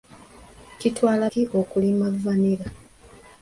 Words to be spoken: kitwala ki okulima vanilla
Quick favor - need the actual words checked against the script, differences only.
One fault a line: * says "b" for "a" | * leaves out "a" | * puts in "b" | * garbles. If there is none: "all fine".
all fine